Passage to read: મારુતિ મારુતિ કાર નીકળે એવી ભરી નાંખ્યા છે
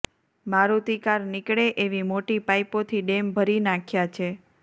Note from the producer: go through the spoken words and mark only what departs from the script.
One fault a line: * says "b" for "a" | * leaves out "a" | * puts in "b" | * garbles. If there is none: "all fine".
* leaves out "મારુતિ"
* puts in "મોટી પાઈપોથી ડેમ"